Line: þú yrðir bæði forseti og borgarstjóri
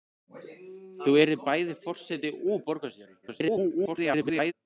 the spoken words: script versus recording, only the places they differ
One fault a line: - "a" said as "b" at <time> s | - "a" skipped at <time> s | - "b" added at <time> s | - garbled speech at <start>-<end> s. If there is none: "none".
- garbled speech at 3.2-4.5 s